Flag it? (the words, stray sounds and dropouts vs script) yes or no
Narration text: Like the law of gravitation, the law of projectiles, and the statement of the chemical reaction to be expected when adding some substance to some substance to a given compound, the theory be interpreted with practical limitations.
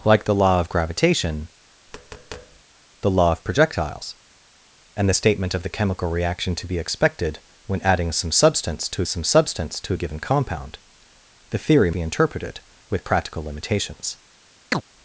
yes